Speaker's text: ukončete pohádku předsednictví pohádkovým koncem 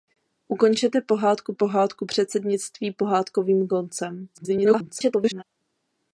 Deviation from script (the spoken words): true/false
true